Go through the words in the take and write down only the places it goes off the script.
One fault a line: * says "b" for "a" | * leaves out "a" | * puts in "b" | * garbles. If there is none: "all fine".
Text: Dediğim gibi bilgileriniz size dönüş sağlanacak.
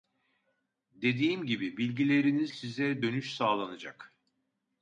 all fine